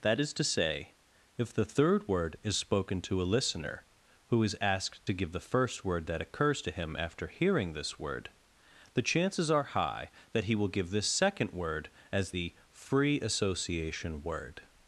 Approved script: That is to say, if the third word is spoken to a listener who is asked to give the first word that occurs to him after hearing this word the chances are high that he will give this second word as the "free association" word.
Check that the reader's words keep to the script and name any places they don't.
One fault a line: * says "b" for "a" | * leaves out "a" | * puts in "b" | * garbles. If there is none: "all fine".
all fine